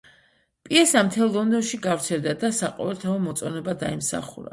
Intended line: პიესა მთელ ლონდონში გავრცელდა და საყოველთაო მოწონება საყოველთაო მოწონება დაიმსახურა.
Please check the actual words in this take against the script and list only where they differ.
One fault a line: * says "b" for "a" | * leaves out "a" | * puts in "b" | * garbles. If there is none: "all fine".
* leaves out "საყოველთაო მოწონება"